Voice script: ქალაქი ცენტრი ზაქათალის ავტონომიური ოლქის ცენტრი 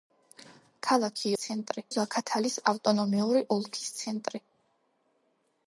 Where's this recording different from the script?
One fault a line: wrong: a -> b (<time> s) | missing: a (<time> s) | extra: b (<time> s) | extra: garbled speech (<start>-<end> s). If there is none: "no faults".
no faults